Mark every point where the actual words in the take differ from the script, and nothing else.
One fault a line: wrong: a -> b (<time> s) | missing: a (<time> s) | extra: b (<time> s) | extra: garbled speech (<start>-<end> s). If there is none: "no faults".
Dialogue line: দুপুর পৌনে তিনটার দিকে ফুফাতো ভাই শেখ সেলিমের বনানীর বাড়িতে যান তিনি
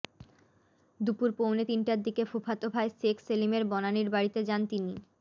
no faults